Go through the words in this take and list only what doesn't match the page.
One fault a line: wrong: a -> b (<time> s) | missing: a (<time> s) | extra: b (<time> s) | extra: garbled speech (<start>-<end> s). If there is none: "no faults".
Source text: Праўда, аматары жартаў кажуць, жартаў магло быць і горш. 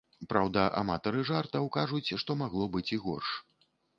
wrong: жартаў -> што (2.2 s)